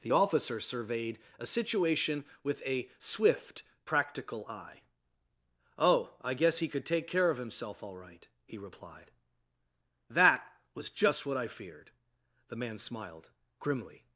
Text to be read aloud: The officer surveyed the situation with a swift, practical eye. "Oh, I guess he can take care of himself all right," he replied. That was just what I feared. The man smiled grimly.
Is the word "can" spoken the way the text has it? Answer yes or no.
no